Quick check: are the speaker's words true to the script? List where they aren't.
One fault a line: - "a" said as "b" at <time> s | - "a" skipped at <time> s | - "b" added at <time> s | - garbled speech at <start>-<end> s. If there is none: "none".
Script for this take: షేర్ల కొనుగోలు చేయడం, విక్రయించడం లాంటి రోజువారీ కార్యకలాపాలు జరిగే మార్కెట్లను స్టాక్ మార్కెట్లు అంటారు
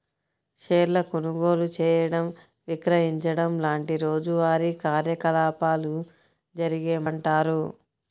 - "మార్కెట్లను స్టాక్ మార్కెట్లు" skipped at 7.0 s